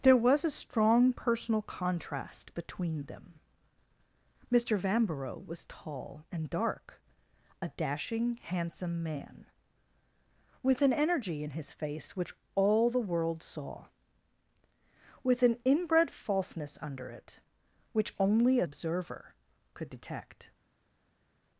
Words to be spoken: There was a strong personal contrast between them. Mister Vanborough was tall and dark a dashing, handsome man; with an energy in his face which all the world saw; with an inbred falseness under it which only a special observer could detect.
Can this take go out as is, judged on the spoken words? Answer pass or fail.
fail